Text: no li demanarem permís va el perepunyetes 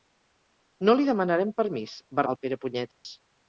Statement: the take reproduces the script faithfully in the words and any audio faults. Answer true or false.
false